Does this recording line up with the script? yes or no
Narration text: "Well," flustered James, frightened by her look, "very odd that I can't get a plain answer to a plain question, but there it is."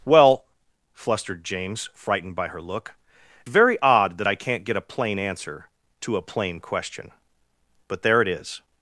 yes